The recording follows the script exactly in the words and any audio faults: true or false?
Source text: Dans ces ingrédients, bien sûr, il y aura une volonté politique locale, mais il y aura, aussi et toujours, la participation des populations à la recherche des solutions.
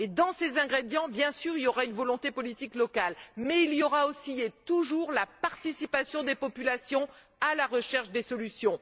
true